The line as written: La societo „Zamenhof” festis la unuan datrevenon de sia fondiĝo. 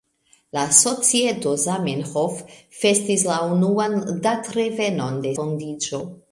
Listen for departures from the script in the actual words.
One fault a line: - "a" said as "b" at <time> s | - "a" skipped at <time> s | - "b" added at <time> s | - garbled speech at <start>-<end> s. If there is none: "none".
- "sia" skipped at 5.3 s